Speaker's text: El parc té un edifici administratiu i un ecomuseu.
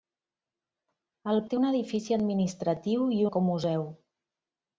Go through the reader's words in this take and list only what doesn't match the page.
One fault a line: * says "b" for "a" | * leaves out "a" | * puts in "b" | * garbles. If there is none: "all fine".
* leaves out "parc"
* leaves out "un"